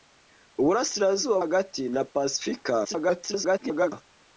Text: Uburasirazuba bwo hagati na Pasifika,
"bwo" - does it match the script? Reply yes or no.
no